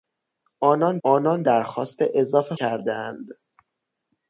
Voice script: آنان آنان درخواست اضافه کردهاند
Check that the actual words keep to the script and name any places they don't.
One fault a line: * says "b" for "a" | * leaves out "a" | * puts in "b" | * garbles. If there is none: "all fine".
all fine